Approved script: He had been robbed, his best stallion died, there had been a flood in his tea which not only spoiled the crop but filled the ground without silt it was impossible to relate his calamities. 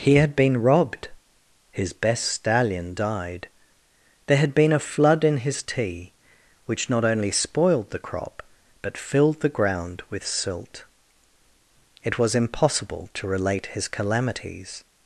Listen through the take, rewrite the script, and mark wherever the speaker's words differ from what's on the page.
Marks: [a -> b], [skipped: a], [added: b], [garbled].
He had been robbed, his best stallion died, there had been a flood in his tea which not only spoiled the crop but filled the ground [without -> with] silt it was impossible to relate his calamities.